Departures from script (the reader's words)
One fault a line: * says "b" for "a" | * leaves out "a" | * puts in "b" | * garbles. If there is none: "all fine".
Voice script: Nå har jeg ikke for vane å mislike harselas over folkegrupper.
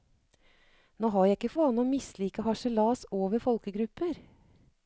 * leaves out "for"